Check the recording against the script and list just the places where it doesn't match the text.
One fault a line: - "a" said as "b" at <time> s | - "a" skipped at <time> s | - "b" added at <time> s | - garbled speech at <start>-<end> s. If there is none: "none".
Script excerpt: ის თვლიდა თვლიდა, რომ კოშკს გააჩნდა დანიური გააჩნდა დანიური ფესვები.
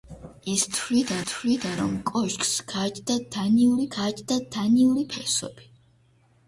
none